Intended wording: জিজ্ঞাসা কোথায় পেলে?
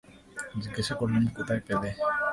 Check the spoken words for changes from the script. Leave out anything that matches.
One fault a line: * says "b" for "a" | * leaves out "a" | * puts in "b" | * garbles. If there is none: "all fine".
* puts in "করলুম"